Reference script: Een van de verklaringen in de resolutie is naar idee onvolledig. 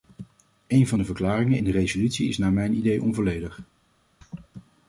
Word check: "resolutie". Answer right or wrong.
right